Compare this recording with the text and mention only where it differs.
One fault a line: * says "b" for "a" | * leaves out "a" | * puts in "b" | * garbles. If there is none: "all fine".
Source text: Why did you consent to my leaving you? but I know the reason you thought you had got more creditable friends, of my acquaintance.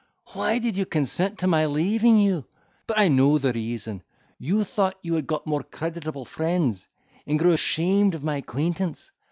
* puts in "and grew ashamed"